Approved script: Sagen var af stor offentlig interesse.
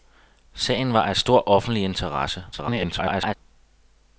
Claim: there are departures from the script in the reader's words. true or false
true